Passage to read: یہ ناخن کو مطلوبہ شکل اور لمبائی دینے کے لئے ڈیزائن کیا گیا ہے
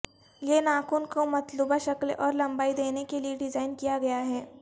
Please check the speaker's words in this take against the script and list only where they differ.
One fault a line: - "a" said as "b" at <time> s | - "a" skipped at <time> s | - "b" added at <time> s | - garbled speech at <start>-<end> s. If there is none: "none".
none